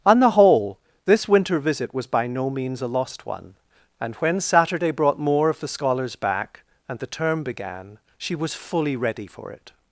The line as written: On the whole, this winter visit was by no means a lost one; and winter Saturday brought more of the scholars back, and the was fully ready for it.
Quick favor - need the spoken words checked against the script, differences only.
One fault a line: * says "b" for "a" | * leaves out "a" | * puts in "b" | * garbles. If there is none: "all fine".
* says "when" for "winter"
* puts in "term began she"